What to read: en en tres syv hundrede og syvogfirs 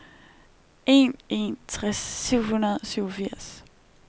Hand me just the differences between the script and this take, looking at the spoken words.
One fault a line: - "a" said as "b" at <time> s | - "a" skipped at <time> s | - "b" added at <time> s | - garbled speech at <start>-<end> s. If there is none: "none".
none